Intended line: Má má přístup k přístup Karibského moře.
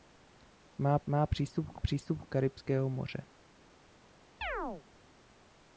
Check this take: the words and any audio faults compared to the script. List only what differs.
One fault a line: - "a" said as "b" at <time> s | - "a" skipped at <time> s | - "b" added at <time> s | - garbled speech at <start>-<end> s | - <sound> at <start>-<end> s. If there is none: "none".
- chirp at 4.4-4.8 s